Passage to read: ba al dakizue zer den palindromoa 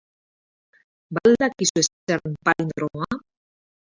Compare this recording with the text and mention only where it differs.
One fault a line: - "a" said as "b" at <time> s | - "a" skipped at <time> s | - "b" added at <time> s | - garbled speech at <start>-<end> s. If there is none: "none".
none